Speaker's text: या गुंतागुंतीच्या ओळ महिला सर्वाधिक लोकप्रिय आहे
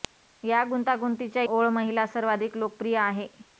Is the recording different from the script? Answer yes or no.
no